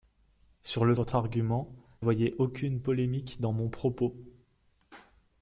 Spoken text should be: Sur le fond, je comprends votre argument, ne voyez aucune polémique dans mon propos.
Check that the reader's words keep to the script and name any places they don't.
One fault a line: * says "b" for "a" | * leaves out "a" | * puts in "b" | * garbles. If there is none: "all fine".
* leaves out "fond je comprends"
* leaves out "ne"